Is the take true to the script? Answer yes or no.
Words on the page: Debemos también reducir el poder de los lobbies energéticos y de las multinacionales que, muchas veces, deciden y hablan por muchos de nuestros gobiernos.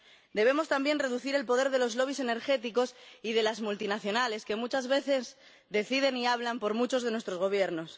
yes